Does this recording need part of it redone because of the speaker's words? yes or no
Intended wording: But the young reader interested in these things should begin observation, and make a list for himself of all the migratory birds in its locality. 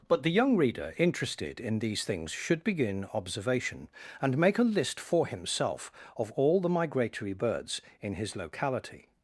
yes